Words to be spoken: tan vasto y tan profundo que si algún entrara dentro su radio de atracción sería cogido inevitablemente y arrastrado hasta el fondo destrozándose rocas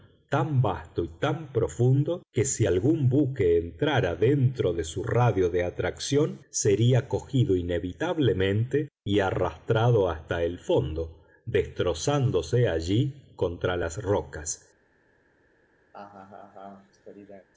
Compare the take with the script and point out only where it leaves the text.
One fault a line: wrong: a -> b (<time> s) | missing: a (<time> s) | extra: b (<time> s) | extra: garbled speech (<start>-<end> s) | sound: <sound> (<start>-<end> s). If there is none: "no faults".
extra: buque (3.1 s)
extra: de (4.7 s)
extra: allí contra las (12.7 s)
sound: laugh (15.9-17.5 s)